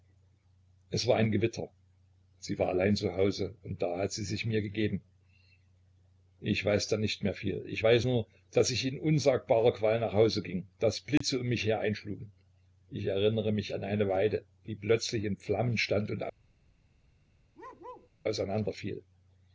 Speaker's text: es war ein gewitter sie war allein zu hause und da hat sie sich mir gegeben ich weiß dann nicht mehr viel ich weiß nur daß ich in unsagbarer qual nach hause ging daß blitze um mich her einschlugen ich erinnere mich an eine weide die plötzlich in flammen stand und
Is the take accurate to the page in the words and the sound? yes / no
no